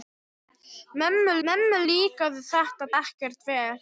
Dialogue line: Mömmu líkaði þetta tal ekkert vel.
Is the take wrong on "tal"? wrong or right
wrong